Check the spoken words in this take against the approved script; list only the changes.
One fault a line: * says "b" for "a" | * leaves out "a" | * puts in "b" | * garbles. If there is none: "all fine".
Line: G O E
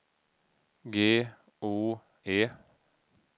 all fine